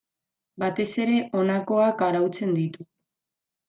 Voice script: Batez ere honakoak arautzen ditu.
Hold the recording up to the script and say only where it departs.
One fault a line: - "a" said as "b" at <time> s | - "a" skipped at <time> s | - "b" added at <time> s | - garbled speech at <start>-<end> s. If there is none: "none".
none